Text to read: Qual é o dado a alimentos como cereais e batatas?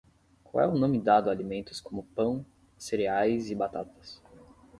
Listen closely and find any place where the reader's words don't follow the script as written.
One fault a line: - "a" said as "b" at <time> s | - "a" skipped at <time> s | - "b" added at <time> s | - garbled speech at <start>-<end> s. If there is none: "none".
- "nome" added at 0.8 s
- "pão" added at 2.0 s